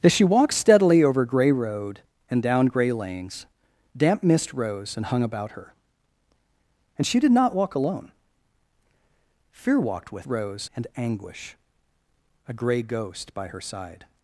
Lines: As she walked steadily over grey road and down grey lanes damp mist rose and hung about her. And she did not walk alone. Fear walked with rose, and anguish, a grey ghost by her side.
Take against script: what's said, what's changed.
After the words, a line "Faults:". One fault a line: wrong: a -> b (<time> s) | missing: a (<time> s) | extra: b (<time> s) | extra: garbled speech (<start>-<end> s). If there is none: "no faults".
As she walked steadily over grey road and down grey lanes damp mist rose and hung about her. And she did not walk alone. Fear walked with rose, and anguish, a grey ghost by her side.
Faults:
no faults